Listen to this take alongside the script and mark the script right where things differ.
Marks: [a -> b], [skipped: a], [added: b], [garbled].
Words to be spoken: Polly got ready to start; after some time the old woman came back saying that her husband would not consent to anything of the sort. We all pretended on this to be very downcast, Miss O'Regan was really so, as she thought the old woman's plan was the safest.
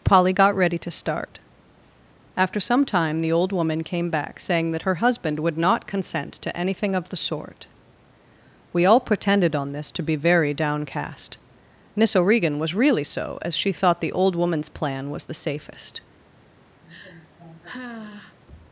Polly got ready to start; after some time the old woman came back saying that her husband would not consent to anything of the sort. We all pretended on this to be very downcast, Miss O'Regan was really so, as she thought the old woman's plan was the safest.